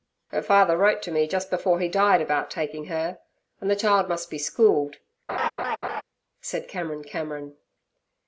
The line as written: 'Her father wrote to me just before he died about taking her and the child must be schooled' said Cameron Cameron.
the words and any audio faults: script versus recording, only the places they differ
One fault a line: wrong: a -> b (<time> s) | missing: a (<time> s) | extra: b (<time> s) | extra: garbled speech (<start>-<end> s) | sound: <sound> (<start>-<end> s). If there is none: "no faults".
sound: laugh (5.3-6.0 s)